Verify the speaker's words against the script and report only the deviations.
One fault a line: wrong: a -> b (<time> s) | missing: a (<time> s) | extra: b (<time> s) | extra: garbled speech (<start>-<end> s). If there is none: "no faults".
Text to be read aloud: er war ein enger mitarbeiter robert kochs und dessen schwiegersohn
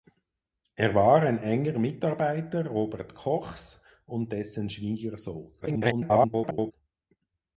extra: garbled speech (5.6-6.7 s)